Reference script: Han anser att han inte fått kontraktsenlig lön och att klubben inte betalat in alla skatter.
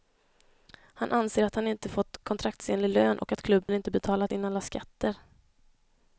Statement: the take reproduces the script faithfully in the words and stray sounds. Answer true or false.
false